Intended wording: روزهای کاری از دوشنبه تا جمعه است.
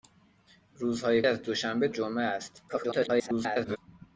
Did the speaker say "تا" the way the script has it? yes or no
no